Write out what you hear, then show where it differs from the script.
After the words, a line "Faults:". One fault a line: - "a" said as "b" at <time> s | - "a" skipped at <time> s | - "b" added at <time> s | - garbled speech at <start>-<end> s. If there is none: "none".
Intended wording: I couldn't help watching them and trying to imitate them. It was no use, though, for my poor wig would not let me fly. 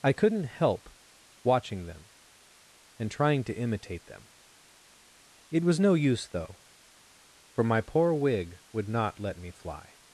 I couldn't help watching them and trying to imitate them. It was no use, though, for my poor wig would not let me fly.
Faults:
none